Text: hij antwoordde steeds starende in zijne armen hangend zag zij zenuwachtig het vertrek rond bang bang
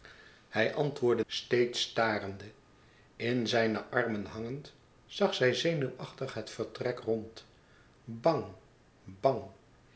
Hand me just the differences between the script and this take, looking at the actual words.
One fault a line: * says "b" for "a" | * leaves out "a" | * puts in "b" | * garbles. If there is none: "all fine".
all fine